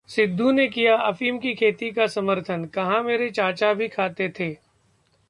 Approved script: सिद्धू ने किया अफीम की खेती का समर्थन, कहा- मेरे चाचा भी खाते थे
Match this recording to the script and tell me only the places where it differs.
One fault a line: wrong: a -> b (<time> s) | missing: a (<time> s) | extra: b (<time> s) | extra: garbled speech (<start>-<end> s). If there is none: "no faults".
no faults